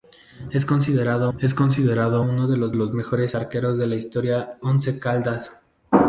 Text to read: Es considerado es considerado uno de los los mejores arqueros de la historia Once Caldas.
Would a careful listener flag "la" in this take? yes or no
no